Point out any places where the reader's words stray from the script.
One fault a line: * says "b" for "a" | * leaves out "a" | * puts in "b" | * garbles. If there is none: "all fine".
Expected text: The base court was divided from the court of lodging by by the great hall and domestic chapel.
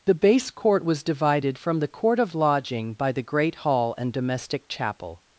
* leaves out "by"